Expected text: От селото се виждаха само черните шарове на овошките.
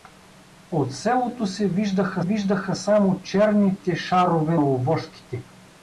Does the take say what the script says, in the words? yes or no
no